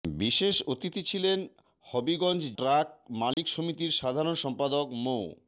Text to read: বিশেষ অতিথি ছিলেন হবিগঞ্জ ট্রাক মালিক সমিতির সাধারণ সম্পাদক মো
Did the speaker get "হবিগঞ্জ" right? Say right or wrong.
right